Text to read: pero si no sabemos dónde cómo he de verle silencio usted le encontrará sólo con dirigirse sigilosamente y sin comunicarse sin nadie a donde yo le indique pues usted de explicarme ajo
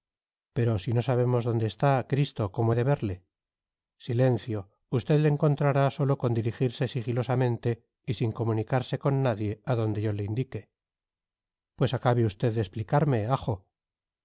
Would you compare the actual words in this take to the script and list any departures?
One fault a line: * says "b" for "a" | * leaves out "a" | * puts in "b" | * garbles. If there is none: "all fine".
* puts in "está cristo"
* says "con" for "sin"
* puts in "acabe"